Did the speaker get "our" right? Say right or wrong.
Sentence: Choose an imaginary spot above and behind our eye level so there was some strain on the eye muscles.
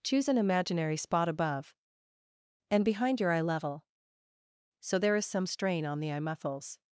wrong